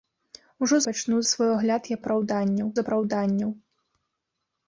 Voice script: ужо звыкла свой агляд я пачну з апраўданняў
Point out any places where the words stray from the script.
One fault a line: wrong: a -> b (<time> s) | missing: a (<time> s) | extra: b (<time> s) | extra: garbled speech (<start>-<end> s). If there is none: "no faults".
wrong: звыкла -> пачну (0.9 s)
wrong: пачну -> апраўданняў (2.0 s)